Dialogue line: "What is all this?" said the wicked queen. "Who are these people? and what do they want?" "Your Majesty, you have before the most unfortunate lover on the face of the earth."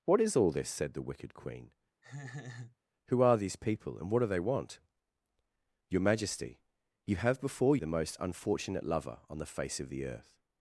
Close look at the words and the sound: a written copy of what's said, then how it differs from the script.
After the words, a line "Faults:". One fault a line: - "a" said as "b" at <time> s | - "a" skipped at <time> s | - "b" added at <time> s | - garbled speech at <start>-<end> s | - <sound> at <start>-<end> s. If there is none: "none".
"What is all this?" said the wicked queen. "Who are these people? and what do they want?" "Your Majesty, you have before the most unfortunate lover on the face of the earth."
Faults:
- laugh at 2.0-2.8 s